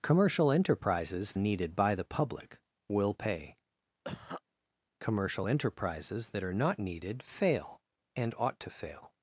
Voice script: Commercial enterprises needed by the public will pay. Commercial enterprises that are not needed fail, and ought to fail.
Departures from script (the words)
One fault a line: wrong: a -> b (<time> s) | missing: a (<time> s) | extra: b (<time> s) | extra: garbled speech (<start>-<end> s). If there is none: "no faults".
no faults